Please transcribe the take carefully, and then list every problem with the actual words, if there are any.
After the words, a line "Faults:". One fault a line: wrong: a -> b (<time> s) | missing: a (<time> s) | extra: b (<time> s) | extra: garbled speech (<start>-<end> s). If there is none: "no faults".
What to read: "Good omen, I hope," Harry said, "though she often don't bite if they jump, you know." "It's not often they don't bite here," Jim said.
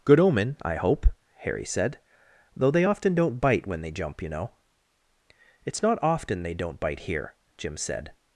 "Good omen, I hope," Harry said, "though they often don't bite when they jump, you know." "It's not often they don't bite here," Jim said.
Faults:
wrong: she -> they (2.7 s)
wrong: if -> when (3.7 s)